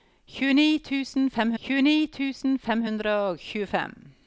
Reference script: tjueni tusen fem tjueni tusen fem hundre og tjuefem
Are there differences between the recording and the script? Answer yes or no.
no